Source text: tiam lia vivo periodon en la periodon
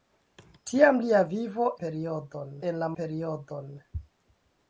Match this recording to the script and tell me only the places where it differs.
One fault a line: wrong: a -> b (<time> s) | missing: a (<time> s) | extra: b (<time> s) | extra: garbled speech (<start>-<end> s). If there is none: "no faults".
no faults